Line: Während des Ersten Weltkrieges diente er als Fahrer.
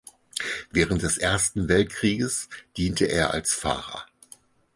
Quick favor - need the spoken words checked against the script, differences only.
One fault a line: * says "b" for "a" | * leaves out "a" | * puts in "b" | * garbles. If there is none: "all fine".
all fine